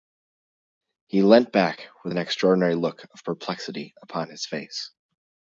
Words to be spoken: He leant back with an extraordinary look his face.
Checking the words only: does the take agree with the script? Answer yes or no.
no